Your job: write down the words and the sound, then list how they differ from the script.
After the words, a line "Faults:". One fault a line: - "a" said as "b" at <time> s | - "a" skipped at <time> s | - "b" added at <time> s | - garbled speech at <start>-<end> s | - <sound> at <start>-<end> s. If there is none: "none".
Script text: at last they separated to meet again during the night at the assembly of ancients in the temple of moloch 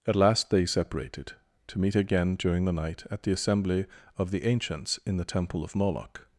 at last they separated to meet again during the night at the assembly of the ancients in the temple of moloch
Faults:
- "the" added at 4.3 s